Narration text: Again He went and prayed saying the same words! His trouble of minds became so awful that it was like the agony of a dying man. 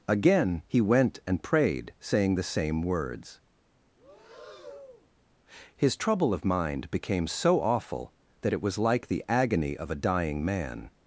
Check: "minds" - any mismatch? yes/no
yes